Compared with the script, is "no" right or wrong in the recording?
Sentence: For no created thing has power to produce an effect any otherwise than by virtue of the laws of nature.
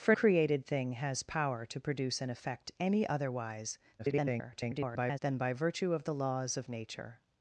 wrong